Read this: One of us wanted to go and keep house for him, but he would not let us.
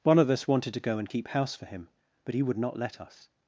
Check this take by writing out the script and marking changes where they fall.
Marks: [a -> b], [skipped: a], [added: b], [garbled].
One of us wanted to go and keep house for him, but he would not let us.